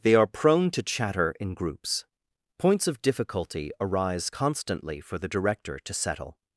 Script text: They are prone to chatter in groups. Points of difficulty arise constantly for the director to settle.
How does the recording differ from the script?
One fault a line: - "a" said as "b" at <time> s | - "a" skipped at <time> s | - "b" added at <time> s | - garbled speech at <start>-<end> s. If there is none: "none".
none